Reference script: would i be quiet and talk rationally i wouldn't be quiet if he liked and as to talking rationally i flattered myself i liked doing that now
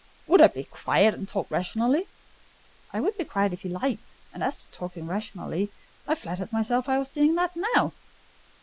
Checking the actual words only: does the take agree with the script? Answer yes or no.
no